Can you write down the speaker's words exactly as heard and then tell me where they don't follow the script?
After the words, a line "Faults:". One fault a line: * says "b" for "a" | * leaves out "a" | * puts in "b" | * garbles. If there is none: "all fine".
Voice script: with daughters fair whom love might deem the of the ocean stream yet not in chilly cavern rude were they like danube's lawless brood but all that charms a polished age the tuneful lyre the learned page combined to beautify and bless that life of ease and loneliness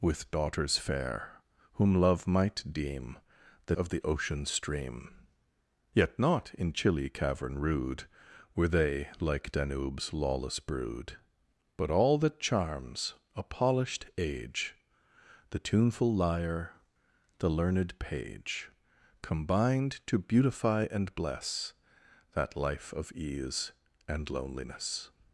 with daughters fair whom love might deem the of the ocean stream yet not in chilly cavern rude were they like danube's lawless brood but all that charms a polished age the tuneful lyre the learned page combined to beautify and bless that life of ease and loneliness
Faults:
all fine